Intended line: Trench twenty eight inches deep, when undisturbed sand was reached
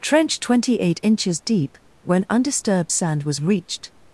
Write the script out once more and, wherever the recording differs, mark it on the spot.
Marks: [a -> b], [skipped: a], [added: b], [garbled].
Trench twenty eight inches deep, when undisturbed sand was reached